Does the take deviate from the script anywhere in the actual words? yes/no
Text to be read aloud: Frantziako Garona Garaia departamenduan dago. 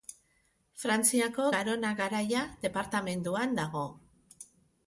no